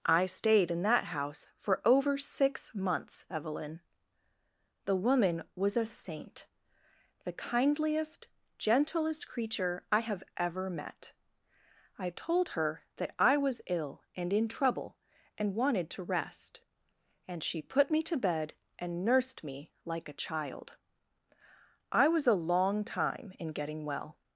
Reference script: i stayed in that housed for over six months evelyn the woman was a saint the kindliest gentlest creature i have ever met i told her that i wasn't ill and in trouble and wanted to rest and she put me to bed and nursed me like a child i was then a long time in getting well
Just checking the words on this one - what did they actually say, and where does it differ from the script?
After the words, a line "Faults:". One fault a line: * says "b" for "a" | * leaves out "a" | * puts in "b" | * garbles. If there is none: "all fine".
i stayed in that house for over six months evelyn the woman was a saint the kindliest gentlest creature i have ever met i told her that i was ill and in trouble and wanted to rest and she put me to bed and nursed me like a child i was a long time in getting well
Faults:
* says "house" for "housed"
* says "was" for "wasn't"
* leaves out "then"